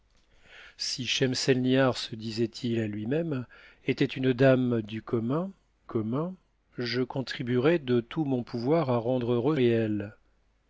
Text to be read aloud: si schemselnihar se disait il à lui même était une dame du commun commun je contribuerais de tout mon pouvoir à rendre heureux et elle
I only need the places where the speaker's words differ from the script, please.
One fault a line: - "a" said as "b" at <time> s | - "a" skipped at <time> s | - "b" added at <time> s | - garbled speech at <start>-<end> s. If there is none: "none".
none